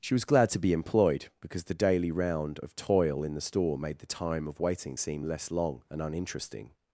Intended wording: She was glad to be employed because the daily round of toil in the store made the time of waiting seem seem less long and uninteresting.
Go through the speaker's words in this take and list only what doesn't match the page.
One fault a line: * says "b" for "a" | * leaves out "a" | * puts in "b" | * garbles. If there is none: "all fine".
* leaves out "seem"